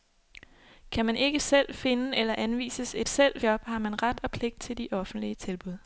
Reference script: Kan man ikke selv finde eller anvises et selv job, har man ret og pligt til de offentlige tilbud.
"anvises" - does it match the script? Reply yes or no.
yes